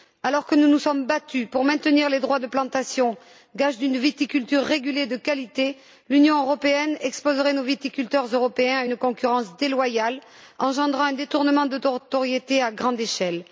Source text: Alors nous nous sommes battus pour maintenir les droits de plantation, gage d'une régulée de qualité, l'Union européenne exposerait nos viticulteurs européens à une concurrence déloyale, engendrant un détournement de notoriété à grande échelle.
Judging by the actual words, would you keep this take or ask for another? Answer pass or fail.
fail